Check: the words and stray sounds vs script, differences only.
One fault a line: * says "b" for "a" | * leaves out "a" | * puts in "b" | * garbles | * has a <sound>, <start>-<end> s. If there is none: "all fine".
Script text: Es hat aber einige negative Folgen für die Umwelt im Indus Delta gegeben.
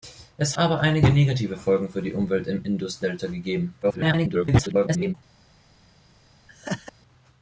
* leaves out "hat"
* garbles
* has a laugh, 6.5-6.9 s